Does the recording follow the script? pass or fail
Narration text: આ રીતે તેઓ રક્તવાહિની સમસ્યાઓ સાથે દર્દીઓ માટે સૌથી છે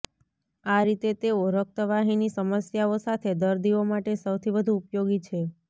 fail